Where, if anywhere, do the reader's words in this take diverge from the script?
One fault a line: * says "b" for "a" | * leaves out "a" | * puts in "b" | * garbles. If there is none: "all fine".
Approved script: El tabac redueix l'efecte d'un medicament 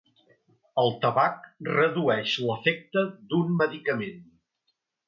all fine